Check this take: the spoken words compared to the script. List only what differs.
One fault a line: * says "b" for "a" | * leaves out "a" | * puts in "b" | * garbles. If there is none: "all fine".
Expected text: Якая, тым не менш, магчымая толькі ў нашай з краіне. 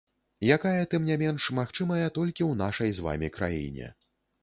* puts in "вамі"